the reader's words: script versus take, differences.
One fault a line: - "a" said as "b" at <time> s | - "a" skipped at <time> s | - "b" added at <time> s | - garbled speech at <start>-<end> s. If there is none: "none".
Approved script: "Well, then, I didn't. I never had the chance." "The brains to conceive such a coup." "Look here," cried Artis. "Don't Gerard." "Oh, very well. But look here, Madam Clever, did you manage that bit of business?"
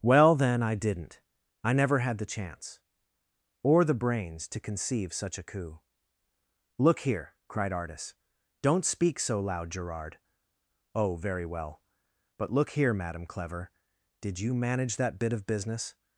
- "Or" added at 3.6 s
- "speak so loud" added at 8.8 s